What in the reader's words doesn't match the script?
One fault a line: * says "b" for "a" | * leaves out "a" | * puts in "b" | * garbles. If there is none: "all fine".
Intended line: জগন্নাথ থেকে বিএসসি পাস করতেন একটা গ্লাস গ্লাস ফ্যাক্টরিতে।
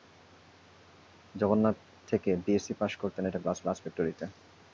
all fine